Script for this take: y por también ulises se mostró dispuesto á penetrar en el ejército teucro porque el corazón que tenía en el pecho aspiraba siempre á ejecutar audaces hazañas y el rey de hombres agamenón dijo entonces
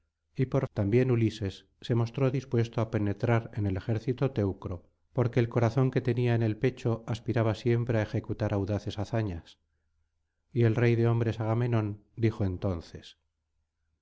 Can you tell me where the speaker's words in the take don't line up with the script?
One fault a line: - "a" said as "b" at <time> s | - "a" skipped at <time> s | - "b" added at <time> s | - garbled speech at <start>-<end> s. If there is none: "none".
none